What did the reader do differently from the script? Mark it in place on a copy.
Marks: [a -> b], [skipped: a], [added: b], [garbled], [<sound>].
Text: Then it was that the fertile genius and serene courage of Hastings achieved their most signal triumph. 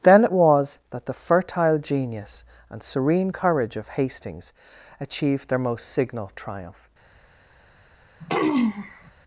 Then it was that the fertile genius and serene courage of Hastings achieved their most signal triumph. [throat clearing]